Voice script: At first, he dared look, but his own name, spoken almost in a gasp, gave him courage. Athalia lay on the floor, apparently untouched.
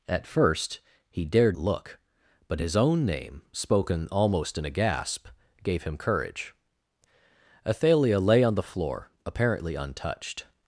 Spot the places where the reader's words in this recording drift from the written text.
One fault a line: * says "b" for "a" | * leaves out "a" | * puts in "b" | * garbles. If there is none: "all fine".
all fine